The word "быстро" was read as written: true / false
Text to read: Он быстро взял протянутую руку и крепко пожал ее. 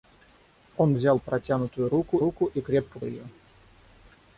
false